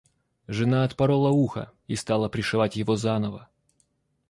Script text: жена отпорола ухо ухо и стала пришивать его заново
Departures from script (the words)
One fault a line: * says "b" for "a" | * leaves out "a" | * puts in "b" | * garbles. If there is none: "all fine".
* leaves out "ухо"